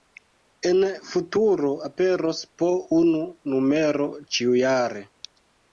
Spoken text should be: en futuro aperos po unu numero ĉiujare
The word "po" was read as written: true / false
true